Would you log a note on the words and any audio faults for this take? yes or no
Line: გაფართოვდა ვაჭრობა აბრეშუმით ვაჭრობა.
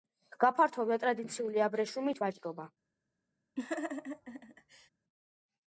yes